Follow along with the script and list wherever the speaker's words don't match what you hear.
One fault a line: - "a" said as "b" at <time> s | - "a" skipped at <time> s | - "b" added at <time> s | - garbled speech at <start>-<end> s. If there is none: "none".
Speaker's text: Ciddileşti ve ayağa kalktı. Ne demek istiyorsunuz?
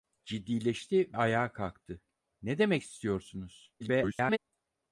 - "ve" skipped at 1.2 s
- garbled speech at 3.8-4.4 s